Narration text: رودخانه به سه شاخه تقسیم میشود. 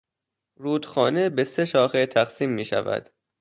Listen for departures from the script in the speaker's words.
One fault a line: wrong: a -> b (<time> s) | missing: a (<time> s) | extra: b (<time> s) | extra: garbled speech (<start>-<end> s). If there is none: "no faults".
no faults